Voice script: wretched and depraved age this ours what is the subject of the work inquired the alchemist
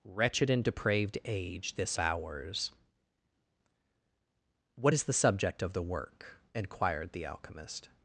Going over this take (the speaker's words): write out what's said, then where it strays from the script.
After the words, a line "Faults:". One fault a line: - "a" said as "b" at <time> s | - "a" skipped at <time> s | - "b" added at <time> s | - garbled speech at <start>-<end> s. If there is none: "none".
wretched and depraved age this ours what is the subject of the work inquired the alchemist
Faults:
none